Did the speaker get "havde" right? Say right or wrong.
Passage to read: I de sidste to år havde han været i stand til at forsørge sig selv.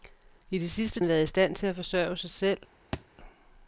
wrong